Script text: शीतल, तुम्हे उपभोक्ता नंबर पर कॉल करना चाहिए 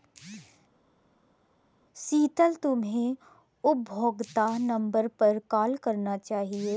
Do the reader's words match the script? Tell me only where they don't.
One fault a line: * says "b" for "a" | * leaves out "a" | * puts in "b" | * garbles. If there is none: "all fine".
all fine